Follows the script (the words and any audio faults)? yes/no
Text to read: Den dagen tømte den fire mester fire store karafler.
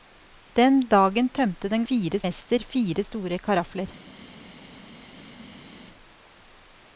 yes